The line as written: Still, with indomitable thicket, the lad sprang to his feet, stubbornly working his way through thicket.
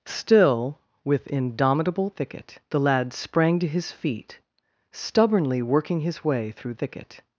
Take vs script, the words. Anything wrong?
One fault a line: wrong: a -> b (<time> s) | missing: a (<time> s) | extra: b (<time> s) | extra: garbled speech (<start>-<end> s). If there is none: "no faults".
no faults